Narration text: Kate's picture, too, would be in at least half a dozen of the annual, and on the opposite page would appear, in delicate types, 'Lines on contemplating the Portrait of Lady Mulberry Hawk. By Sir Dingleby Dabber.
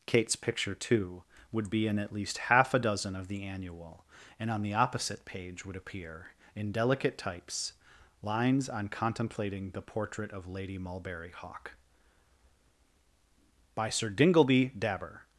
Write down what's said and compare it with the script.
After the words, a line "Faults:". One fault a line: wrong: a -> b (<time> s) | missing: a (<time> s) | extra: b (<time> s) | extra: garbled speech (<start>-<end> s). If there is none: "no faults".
Kate's picture, too, would be in at least half a dozen of the annual, and on the opposite page would appear, in delicate types, 'Lines on contemplating the Portrait of Lady Mulberry Hawk. By Sir Dingleby Dabber.
Faults:
no faults